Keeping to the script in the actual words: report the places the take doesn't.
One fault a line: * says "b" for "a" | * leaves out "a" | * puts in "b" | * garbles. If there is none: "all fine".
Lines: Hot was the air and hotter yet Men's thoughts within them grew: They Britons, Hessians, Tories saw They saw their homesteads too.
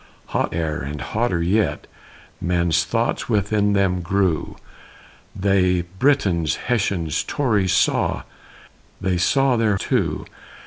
* leaves out "was the"
* leaves out "homesteads"